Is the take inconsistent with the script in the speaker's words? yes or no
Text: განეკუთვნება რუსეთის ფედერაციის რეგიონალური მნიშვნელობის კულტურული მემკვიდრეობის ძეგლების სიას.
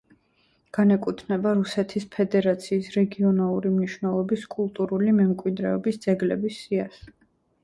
no